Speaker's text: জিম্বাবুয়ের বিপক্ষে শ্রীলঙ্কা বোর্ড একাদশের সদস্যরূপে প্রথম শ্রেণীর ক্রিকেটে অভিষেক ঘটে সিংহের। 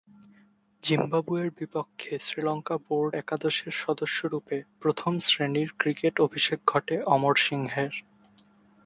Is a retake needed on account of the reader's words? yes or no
yes